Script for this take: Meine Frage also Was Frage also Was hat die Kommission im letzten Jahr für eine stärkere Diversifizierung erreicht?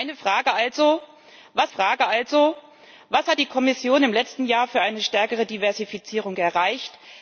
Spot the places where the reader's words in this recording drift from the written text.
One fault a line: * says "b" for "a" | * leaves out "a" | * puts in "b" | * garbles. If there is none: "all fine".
all fine